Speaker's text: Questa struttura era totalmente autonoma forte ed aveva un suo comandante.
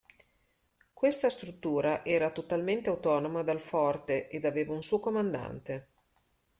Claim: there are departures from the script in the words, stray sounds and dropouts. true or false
true